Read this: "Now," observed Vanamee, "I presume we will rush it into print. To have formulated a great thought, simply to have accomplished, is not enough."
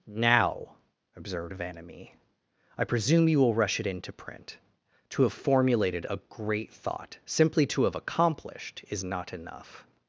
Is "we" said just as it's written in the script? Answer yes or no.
no